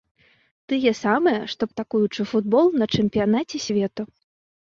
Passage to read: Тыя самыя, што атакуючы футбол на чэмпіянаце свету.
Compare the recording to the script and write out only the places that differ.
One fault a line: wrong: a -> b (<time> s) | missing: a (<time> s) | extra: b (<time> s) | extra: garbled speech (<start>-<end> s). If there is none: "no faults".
no faults